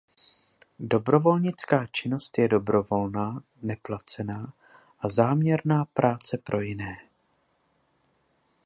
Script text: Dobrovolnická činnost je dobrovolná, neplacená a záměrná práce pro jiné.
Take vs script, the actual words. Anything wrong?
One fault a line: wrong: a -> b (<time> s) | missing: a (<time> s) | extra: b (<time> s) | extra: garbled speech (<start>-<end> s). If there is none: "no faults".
no faults